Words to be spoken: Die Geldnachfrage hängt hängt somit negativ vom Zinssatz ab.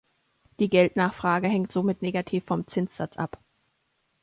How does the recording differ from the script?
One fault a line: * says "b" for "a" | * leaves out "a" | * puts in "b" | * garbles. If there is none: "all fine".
* leaves out "hängt"